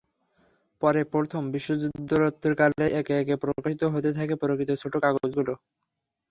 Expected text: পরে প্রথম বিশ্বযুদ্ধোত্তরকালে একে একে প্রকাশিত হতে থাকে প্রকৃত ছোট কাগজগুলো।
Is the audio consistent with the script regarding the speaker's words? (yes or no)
yes